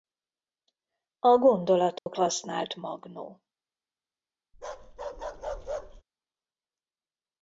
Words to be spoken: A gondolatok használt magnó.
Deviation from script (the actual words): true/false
false